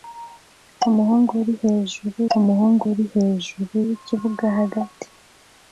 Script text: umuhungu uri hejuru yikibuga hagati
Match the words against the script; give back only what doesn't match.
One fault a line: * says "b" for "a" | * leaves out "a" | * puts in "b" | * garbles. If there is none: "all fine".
* puts in "umuhungu uri hejuru"